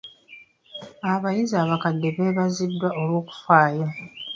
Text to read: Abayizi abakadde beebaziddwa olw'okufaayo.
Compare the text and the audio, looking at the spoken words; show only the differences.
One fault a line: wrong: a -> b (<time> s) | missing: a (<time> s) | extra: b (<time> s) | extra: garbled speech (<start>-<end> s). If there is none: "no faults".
no faults